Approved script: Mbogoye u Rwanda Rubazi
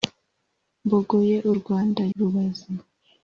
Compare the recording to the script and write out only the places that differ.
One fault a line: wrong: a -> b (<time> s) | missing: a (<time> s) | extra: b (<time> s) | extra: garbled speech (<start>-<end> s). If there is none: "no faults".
no faults